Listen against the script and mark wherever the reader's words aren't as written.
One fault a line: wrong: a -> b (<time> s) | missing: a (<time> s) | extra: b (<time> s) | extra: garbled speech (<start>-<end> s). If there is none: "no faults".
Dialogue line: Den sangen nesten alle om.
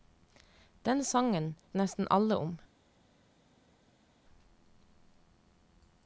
no faults